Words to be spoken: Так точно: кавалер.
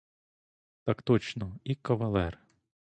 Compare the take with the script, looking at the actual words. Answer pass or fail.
fail